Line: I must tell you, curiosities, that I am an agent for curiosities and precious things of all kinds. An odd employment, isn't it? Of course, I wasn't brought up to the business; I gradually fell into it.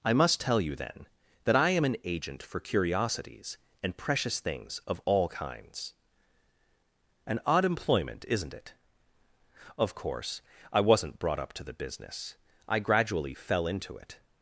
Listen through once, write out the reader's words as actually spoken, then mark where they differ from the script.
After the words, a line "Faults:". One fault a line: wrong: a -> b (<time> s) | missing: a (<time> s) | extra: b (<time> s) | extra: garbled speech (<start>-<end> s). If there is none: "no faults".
I must tell you, then, that I am an agent for curiosities and precious things of all kinds. An odd employment, isn't it? Of course, I wasn't brought up to the business; I gradually fell into it.
Faults:
wrong: curiosities -> then (0.8 s)